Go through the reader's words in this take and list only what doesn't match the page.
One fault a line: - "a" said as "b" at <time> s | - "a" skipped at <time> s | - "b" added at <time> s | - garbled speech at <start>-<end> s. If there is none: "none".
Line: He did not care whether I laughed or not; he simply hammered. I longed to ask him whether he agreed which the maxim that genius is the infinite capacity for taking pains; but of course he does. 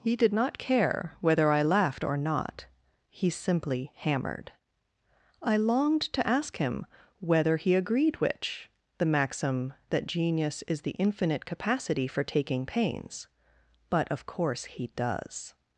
none